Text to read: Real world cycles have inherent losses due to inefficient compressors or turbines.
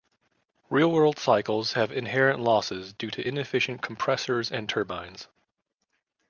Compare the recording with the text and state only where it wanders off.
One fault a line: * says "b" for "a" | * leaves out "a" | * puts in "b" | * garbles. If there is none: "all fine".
* says "and" for "or"